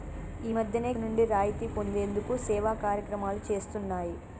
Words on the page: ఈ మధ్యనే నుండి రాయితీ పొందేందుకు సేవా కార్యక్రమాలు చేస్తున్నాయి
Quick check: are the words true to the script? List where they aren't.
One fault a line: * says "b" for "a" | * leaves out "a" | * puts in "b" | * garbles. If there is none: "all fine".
all fine